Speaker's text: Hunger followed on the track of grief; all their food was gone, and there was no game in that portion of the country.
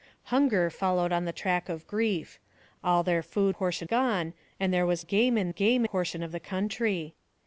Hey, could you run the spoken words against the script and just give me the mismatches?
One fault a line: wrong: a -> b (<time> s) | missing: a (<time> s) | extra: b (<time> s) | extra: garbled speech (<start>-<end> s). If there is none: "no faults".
wrong: was -> portion (3.5 s)
missing: no (5.1 s)
wrong: that -> game (5.5 s)